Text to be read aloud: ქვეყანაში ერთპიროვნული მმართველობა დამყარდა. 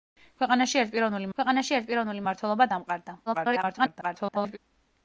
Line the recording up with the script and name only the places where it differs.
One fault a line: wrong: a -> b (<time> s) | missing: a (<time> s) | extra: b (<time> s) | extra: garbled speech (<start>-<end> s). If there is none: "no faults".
extra: ქვეყანაში ერთპიროვნული (1.4 s)
extra: garbled speech (3.3-4.6 s)